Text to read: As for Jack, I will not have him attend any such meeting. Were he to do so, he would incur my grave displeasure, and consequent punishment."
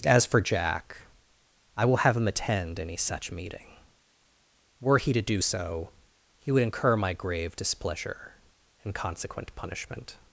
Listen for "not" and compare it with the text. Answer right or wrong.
wrong